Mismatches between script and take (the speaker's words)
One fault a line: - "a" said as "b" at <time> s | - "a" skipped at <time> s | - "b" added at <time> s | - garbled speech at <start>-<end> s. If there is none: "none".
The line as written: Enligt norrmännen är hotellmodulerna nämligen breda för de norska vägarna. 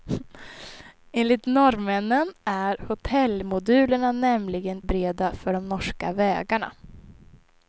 none